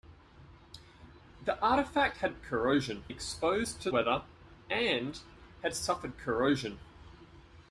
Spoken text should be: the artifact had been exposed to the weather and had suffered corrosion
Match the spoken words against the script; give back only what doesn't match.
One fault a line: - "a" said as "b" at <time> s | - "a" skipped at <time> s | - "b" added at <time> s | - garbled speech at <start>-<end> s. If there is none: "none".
- "been" said as "corrosion" at 2.4 s
- "the" skipped at 3.9 s